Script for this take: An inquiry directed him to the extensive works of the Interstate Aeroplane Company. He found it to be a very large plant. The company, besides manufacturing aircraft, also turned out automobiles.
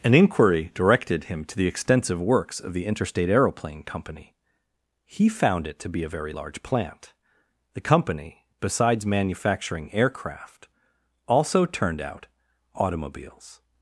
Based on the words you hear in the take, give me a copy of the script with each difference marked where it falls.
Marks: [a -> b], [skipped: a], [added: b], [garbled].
An inquiry directed him to the extensive works of the Interstate Aeroplane Company. He found it to be a very large plant. The company, besides manufacturing aircraft, also turned out automobiles.